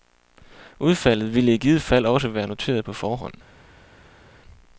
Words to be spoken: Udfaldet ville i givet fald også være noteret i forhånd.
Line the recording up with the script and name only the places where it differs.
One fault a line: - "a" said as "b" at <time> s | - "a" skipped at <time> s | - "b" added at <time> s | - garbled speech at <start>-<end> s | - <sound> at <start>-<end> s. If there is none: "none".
- "i" said as "på" at 2.8 s